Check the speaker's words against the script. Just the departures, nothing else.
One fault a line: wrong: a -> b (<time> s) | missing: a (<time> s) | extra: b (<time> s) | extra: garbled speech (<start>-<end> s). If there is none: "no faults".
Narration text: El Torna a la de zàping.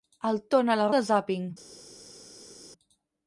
no faults